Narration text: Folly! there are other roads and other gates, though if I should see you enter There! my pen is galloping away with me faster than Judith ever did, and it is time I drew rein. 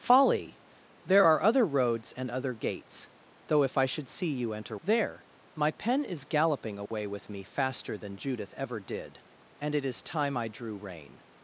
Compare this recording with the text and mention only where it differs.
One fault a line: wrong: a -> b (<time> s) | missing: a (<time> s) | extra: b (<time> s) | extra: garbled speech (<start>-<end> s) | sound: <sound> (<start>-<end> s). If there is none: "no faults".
sound: dropout (6.9-6.9 s)